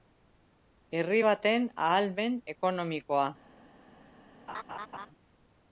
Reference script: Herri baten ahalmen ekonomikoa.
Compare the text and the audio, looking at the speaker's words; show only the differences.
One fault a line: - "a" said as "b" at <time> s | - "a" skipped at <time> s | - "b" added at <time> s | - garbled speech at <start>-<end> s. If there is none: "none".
none